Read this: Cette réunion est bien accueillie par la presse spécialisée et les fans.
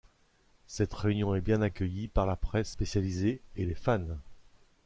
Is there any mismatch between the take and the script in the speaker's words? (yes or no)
no